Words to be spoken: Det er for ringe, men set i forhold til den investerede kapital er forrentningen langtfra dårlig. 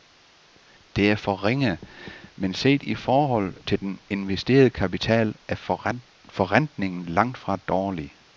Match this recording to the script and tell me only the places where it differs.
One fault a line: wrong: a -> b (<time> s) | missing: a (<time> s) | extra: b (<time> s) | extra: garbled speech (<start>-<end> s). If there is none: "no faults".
no faults